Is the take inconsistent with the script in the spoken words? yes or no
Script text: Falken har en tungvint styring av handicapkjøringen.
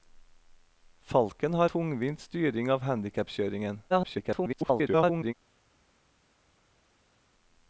yes